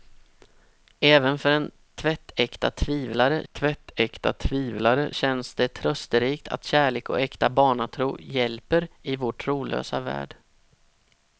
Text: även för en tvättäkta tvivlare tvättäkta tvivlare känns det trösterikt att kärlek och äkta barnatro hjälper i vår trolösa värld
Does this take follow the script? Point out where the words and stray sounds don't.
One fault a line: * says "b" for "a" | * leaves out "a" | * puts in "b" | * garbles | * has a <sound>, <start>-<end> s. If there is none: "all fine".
all fine